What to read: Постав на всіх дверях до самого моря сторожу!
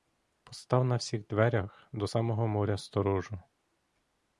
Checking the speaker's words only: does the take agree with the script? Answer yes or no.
yes